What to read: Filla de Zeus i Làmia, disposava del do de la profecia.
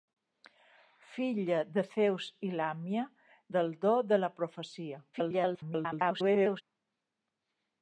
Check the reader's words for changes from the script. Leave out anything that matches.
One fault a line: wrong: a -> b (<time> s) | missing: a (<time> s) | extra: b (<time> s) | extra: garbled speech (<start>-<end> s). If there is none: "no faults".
missing: disposava (3.0 s)
extra: garbled speech (5.1-6.6 s)